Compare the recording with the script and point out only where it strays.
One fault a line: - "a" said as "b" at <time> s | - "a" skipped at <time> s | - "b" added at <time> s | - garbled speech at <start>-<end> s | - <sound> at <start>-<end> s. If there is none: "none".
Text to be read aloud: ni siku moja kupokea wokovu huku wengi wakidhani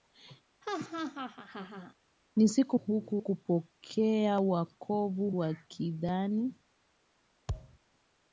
- laugh at 0.6-1.9 s
- "moja" said as "huku" at 2.7 s
- "huku wengi" skipped at 5.3 s
- thud at 7.5-7.8 s